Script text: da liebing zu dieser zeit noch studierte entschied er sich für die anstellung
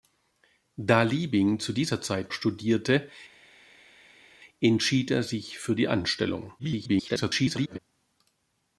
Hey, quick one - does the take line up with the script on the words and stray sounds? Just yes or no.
no